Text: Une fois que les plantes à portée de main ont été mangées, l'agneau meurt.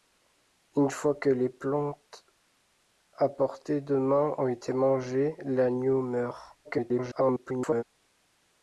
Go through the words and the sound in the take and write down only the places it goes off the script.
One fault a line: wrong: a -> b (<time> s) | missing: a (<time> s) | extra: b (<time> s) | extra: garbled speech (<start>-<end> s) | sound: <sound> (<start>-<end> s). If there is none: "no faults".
extra: garbled speech (6.6-7.8 s)